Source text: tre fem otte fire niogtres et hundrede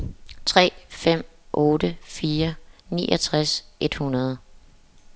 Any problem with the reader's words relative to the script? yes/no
no